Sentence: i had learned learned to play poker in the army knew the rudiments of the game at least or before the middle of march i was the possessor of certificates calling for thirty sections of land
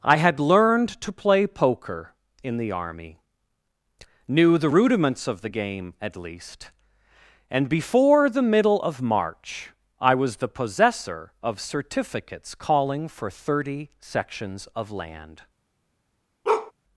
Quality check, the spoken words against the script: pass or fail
fail